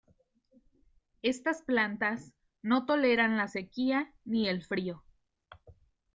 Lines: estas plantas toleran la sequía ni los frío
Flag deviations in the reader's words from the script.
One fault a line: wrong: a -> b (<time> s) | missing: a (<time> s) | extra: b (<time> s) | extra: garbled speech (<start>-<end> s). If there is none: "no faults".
extra: no (2.6 s)
wrong: los -> el (4.5 s)